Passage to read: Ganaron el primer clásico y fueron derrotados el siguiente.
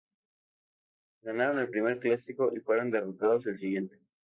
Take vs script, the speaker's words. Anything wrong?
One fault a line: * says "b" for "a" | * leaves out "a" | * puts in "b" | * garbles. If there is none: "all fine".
all fine